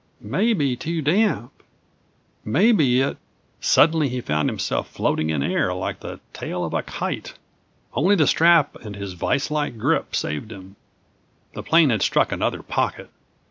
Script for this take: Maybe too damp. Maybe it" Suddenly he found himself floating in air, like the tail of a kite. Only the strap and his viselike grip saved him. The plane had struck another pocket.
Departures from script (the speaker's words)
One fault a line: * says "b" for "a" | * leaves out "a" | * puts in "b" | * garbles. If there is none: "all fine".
all fine